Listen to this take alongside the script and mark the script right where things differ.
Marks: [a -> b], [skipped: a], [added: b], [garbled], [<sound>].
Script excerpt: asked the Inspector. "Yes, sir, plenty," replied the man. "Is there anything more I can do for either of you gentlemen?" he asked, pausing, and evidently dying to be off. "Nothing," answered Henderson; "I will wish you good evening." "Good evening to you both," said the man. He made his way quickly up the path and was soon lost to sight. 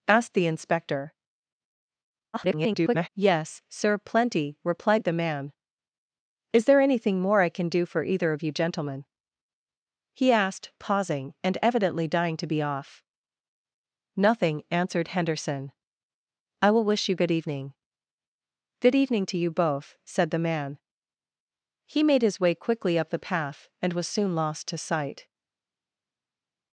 asked the Inspector. [garbled] "Yes, sir, plenty," replied the man. "Is there anything more I can do for either of you gentlemen?" he asked, pausing, and evidently dying to be off. "Nothing," answered Henderson; "I will wish you good evening." "Good evening to you both," said the man. He made his way quickly up the path and was soon lost to sight.